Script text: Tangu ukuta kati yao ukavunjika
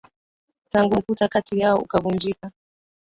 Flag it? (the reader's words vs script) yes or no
no